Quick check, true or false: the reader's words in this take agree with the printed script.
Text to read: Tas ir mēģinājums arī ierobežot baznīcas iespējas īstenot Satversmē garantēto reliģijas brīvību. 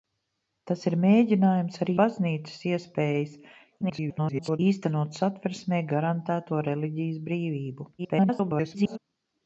false